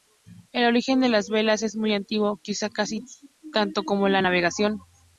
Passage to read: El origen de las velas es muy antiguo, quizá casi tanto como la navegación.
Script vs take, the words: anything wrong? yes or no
no